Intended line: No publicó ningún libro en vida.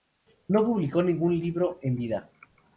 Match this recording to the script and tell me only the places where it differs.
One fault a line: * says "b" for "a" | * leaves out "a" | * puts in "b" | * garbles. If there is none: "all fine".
all fine